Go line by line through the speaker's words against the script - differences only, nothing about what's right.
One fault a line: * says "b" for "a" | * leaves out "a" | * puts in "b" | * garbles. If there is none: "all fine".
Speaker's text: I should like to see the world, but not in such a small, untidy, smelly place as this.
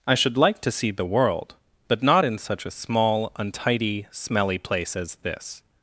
all fine